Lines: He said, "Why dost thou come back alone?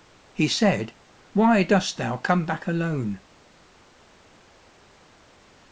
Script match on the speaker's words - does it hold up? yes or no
yes